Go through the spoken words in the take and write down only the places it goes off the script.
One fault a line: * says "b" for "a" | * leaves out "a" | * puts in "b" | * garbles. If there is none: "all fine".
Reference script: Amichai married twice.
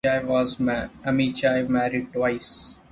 all fine